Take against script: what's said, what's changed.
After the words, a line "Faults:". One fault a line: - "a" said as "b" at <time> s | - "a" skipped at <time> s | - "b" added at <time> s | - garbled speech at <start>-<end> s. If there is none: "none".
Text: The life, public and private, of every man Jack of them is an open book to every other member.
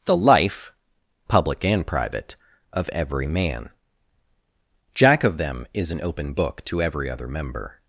The life, public and private, of every man Jack of them is an open book to every other member.
Faults:
none